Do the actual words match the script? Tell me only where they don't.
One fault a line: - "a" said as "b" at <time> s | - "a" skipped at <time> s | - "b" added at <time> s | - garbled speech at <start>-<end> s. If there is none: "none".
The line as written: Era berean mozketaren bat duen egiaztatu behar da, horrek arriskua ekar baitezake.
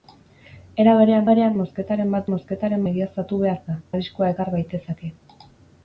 - "berean" added at 1.3 s
- "duen" said as "mozketaren" at 2.3 s
- "horrek" skipped at 3.8 s